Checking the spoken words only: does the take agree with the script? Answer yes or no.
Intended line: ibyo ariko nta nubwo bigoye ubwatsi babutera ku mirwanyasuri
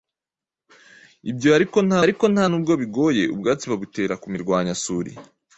no